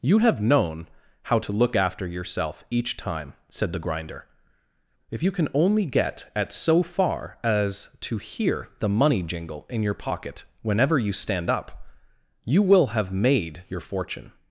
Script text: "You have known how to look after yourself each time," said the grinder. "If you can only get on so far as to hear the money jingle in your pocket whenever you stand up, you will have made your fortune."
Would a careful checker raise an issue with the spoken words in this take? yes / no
yes